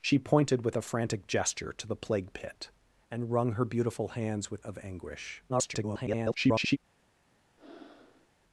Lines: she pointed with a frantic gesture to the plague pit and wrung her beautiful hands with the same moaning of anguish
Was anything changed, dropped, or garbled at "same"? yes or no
yes